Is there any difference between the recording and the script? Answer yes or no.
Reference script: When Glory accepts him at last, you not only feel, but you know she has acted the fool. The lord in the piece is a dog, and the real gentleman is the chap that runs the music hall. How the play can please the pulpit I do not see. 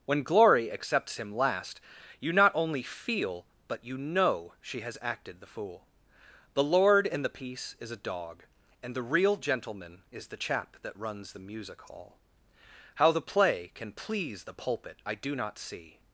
yes